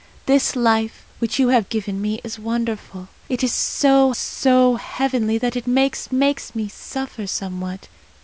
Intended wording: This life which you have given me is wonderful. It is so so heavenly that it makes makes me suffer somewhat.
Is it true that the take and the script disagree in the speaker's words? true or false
false